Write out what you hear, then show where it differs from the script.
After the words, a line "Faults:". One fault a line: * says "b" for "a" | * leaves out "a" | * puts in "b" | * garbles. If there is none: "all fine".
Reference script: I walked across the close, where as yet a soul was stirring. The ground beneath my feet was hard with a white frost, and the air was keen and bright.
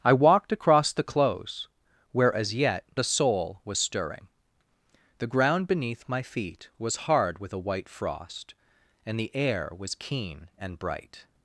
I walked across the close, where as yet a soul was stirring. The ground beneath my feet was hard with a white frost, and the air was keen and bright.
Faults:
all fine